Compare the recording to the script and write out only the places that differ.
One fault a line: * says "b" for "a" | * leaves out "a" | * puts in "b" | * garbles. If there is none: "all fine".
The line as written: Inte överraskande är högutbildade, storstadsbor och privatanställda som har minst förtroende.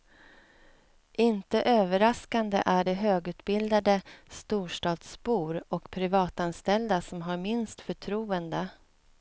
* puts in "det"